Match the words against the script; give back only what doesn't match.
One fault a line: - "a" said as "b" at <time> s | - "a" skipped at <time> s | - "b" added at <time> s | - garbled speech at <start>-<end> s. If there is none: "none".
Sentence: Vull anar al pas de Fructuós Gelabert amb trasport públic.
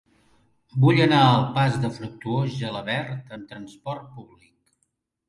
none